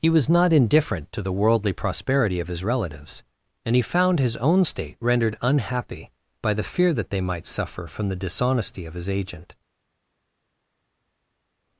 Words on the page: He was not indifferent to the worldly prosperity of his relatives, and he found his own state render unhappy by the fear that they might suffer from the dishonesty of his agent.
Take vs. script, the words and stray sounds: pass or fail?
fail